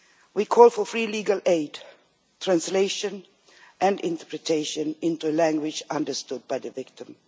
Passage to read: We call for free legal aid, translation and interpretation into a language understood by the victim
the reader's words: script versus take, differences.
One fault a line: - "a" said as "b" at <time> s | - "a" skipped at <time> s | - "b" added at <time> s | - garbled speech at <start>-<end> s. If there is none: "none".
none